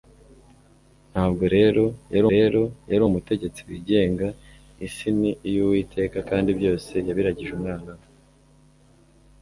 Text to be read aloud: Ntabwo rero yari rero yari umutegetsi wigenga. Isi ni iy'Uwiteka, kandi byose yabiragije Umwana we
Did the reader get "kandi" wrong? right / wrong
right